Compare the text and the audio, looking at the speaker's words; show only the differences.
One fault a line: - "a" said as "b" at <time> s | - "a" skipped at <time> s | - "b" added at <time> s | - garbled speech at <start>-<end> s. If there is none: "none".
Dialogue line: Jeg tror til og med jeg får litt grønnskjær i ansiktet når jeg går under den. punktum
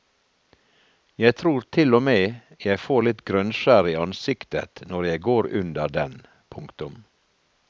none